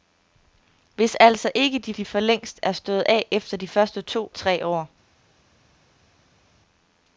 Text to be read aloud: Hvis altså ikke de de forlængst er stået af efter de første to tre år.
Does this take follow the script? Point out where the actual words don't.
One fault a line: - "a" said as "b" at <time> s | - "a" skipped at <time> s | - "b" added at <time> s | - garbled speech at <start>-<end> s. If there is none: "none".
none